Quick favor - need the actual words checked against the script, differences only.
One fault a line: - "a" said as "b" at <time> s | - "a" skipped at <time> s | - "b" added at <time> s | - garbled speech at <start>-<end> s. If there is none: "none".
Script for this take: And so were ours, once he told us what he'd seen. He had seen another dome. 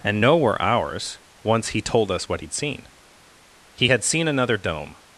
- "so" said as "no" at 0.2 s